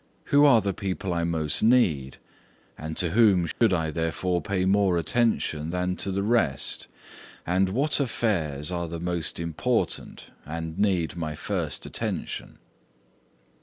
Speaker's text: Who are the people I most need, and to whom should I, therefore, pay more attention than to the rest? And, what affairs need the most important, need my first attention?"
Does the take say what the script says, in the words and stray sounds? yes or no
no